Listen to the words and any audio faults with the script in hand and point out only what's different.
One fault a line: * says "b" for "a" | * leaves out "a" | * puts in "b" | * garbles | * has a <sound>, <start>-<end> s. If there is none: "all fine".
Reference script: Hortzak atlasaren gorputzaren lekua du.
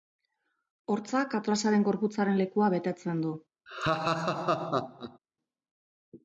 * puts in "betetzen"
* has a laugh, 3.7-5.2 s